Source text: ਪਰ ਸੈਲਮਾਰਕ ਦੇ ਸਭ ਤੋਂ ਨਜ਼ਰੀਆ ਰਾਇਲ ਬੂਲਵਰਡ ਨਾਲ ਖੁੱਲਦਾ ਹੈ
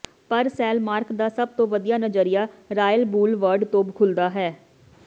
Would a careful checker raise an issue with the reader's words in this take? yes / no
yes